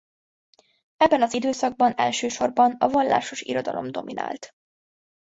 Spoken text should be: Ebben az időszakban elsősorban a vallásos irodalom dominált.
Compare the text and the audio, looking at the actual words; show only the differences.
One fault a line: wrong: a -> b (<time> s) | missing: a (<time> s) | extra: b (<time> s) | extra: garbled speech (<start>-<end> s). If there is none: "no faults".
no faults